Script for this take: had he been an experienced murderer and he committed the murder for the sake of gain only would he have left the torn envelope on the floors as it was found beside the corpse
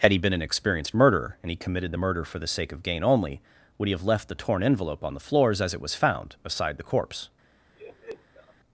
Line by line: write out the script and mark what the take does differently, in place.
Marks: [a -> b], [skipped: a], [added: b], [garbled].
had he been an experienced murderer and he committed the murder for the sake of gain only would he have left the torn envelope on the floors as it was found beside the corpse